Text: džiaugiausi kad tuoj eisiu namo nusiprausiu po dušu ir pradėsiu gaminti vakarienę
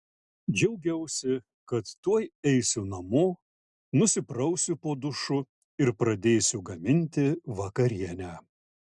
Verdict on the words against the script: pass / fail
pass